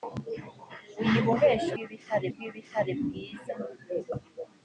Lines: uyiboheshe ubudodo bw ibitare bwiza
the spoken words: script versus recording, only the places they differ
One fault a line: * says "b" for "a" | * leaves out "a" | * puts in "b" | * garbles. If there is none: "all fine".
* says "ibitare" for "ubudodo"